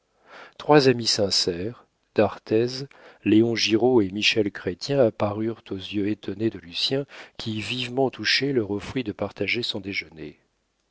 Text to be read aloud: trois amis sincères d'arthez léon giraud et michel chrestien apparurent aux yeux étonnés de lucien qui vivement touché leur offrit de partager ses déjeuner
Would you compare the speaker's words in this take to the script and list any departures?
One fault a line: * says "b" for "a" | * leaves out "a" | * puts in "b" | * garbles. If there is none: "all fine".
* says "son" for "ses"